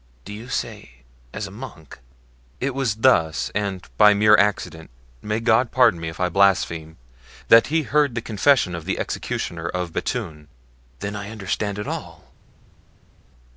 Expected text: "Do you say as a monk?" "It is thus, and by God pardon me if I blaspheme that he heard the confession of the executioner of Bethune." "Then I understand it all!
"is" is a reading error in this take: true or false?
true